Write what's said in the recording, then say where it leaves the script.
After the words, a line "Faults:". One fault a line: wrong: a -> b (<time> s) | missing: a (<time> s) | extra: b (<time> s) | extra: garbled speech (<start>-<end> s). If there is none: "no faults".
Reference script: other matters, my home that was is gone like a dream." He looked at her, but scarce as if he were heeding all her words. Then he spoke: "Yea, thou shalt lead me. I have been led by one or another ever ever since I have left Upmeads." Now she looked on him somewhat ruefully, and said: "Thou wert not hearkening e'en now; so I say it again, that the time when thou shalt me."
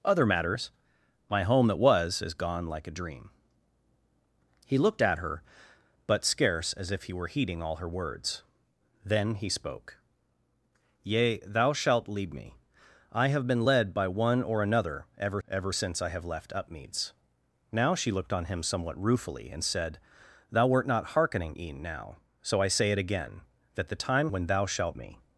other matters, my home that was is gone like a dream." He looked at her, but scarce as if he were heeding all her words. Then he spoke: "Yea, thou shalt lead me. I have been led by one or another ever ever since I have left Upmeads." Now she looked on him somewhat ruefully, and said: "Thou wert not hearkening e'en now; so I say it again, that the time when thou shalt me."
Faults:
no faults